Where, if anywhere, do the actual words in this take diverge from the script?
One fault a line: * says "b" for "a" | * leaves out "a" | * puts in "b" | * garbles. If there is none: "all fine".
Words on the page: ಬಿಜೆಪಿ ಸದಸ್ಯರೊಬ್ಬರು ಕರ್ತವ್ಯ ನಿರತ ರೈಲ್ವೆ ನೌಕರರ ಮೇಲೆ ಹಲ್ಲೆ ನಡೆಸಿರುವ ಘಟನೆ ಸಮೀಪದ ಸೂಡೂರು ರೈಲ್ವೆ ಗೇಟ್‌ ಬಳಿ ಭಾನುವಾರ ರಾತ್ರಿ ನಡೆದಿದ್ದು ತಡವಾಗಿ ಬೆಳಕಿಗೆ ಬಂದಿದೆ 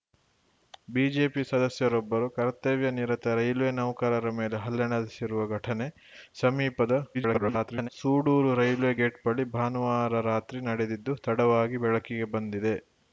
* garbles